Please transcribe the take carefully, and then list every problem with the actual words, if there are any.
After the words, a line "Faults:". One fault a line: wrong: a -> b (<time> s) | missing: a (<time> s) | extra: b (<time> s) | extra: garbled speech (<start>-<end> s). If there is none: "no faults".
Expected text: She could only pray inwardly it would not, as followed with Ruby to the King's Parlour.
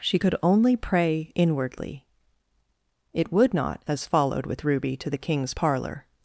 She could only pray inwardly it would not, as followed with Ruby to the King's Parlour.
Faults:
no faults